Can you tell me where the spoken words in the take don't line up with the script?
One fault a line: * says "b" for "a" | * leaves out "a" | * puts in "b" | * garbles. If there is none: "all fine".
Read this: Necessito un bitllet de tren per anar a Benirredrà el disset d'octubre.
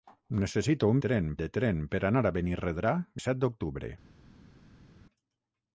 * says "tren" for "bitllet"
* leaves out "el"